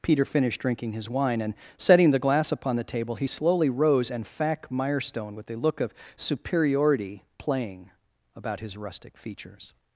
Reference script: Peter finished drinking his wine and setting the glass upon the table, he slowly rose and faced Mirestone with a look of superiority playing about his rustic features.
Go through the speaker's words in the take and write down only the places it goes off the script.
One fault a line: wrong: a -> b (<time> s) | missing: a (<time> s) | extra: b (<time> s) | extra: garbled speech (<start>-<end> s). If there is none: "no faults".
wrong: faced -> fac (4.3 s)